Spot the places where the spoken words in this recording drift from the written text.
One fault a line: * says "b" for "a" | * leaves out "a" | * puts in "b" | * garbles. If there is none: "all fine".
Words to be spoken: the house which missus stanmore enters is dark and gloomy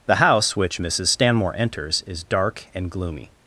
all fine